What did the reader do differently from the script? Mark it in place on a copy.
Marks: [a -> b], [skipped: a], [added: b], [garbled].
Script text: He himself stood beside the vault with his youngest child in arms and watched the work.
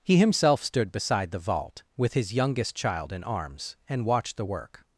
He himself stood beside the vault with his youngest child in arms and watched the work.